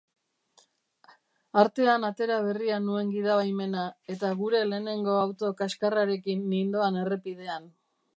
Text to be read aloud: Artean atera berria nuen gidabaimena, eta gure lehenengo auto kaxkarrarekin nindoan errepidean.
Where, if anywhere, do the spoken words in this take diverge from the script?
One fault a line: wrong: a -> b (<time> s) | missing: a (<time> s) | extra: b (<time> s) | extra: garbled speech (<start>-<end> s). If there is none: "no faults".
no faults